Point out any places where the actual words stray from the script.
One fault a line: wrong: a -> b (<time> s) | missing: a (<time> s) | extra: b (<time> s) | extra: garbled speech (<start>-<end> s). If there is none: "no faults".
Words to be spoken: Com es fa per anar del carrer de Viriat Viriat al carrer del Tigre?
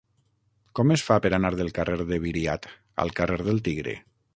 missing: Viriat (2.7 s)